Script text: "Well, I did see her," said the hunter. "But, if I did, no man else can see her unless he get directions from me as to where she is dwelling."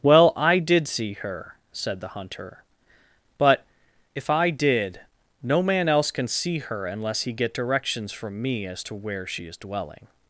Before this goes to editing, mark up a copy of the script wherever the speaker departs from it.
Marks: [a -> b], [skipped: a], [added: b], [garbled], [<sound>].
"Well, I did see her," said the hunter. "But, if I did, no man else can see her unless he get directions from me as to where she is dwelling."